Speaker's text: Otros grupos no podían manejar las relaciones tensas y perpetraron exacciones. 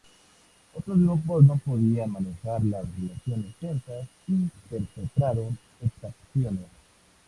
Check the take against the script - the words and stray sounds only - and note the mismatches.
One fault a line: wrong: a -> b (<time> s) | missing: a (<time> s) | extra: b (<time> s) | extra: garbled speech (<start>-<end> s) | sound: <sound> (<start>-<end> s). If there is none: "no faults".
no faults